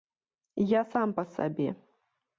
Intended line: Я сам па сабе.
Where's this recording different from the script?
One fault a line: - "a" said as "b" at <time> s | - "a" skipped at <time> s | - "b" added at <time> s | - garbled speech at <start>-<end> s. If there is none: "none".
none